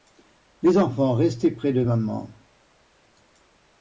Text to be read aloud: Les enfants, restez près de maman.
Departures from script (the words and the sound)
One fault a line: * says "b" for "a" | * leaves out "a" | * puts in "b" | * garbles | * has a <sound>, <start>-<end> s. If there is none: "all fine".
all fine